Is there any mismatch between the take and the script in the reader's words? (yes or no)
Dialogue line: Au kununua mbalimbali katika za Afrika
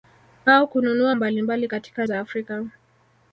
no